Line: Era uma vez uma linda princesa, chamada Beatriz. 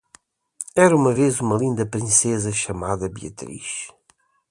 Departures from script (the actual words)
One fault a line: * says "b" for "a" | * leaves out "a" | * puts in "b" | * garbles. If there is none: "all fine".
all fine